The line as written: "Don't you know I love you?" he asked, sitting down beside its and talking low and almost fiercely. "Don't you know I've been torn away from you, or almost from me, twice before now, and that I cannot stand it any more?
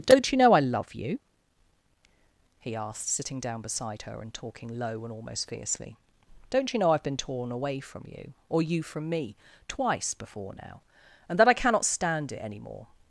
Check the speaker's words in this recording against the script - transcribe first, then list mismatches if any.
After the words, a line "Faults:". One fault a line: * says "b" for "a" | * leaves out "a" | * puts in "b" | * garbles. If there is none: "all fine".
"Don't you know I love you?" he asked, sitting down beside her and talking low and almost fiercely. "Don't you know I've been torn away from you, or you from me, twice before now, and that I cannot stand it any more?
Faults:
* says "her" for "its"
* says "you" for "almost"